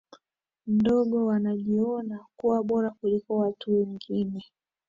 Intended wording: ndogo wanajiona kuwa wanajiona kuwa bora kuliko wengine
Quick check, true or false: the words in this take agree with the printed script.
false